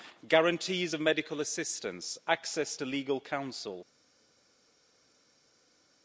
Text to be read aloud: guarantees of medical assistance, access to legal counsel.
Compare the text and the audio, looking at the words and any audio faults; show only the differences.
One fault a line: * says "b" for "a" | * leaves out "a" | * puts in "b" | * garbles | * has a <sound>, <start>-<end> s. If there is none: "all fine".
all fine